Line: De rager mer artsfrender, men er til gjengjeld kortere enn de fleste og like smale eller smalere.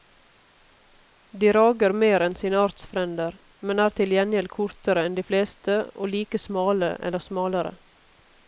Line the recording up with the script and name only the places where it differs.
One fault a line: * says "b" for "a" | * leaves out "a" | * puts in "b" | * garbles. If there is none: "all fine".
* puts in "enn sine"